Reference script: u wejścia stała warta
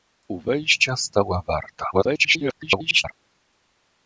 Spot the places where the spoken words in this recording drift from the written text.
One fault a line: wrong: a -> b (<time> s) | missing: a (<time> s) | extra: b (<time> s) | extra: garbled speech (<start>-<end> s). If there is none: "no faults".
extra: garbled speech (1.9-3.1 s)